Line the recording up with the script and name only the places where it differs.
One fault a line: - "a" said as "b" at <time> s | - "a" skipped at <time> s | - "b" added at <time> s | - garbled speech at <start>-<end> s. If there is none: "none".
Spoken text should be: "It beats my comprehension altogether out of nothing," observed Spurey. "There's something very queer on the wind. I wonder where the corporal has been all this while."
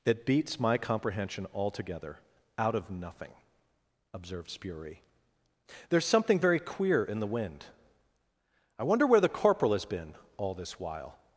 - "on" said as "in" at 7.0 s